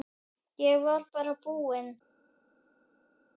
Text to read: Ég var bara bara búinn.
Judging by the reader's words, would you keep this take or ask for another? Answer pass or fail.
fail